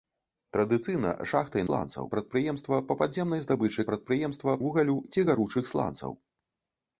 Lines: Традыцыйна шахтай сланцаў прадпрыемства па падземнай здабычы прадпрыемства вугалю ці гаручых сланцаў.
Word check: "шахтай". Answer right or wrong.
right